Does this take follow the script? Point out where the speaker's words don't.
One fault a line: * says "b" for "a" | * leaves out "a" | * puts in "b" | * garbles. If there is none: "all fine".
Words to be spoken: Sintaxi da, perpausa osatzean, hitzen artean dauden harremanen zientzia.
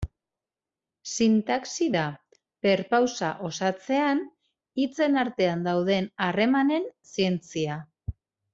all fine